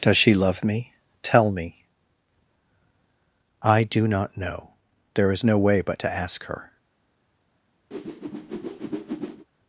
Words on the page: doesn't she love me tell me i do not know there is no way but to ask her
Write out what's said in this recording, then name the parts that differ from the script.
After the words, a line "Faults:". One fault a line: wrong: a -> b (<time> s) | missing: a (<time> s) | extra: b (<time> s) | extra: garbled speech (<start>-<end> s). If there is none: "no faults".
does she love me tell me i do not know there is no way but to ask her
Faults:
wrong: doesn't -> does (0.0 s)